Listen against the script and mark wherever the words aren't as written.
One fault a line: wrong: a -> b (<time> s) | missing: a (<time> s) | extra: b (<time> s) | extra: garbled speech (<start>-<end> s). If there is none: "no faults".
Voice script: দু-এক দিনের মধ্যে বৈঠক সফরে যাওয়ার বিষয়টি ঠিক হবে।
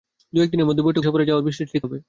no faults